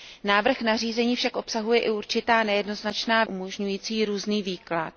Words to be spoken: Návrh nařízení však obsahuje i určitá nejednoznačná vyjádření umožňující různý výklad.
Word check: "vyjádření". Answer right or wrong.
wrong